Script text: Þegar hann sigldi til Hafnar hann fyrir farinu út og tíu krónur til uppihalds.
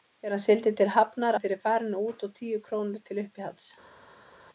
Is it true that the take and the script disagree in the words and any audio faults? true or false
false